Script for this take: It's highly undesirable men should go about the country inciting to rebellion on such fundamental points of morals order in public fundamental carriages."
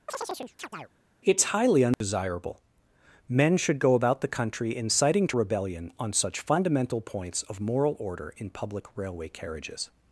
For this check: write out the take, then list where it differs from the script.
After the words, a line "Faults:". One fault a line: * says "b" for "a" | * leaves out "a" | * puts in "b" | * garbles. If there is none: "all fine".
It's highly undesirable men should go about the country inciting to rebellion on such fundamental points of moral order in public railway carriages."
Faults:
* says "moral" for "morals"
* says "railway" for "fundamental"